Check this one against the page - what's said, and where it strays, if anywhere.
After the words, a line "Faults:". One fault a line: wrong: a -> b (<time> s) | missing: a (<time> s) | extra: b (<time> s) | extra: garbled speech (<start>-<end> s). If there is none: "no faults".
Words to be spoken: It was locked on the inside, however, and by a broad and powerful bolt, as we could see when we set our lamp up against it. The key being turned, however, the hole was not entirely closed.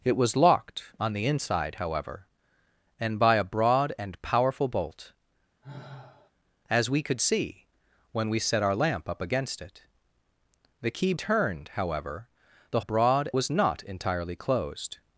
It was locked on the inside, however, and by a broad and powerful bolt, as we could see when we set our lamp up against it. The key turned, however, the broad was not entirely closed.
Faults:
missing: being (11.1 s)
wrong: hole -> broad (12.8 s)